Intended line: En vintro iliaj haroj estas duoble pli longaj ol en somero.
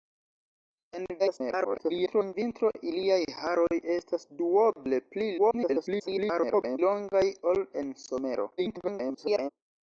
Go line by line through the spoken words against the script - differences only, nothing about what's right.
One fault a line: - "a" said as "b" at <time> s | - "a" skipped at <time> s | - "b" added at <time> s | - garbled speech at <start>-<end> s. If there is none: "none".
- garbled speech at 1.2-2.3 s
- garbled speech at 5.4-6.8 s
- garbled speech at 8.6-9.5 s